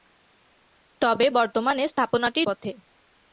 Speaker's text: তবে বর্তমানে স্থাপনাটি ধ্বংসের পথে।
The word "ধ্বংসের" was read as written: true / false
false